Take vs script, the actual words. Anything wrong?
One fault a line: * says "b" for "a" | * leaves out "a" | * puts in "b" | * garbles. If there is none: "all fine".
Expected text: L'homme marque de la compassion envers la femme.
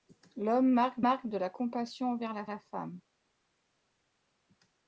* puts in "marque"
* puts in "la"